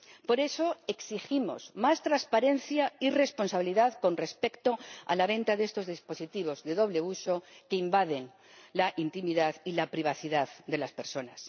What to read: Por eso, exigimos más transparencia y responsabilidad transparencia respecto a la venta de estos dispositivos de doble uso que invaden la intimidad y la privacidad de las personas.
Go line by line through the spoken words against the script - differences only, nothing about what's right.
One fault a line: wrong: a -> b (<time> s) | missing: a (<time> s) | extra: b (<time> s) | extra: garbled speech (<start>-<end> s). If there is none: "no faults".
wrong: transparencia -> con (4.0 s)